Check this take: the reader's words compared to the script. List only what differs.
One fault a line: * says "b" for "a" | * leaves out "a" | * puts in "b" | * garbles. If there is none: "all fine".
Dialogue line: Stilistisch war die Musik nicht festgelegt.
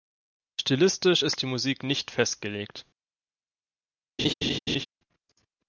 * says "ist" for "war"